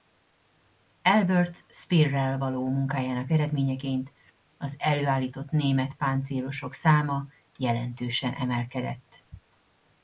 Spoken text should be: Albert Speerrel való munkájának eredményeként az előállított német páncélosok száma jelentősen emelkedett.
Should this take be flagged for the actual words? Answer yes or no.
no